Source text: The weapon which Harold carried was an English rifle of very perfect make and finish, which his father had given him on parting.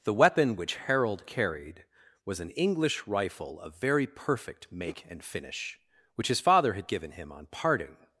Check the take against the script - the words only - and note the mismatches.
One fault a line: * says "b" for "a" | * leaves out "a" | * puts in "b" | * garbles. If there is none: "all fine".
all fine